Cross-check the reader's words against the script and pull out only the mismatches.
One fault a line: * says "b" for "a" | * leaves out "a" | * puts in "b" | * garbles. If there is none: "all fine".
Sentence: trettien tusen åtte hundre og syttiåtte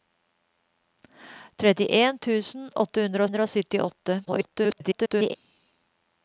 * puts in "hundre"
* garbles